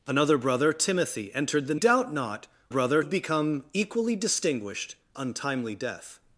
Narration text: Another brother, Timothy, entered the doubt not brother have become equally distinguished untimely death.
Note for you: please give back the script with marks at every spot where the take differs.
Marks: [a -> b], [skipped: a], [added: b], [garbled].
Another brother, Timothy, entered the doubt not brother have become equally distinguished untimely death.